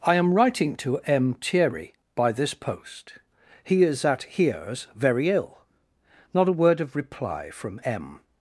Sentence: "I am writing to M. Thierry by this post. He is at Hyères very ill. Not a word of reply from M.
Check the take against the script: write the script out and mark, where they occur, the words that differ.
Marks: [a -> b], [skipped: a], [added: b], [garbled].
"I am writing to M. Thierry by this post. He is at Hyères very ill. Not a word of reply from M.